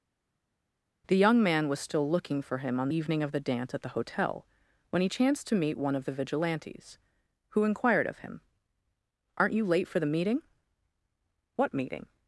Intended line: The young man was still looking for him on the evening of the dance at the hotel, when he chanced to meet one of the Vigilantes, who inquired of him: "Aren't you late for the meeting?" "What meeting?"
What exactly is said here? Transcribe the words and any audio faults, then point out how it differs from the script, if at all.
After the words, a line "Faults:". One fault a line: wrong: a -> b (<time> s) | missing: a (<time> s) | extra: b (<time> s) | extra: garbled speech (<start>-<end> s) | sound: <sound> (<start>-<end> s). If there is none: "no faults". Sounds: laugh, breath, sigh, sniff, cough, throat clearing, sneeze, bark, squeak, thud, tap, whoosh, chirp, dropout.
The young man was still looking for him on evening of the dance at the hotel, when he chanced to meet one of the Vigilantes, who inquired of him: "Aren't you late for the meeting?" "What meeting?"
Faults:
missing: the (2.9 s)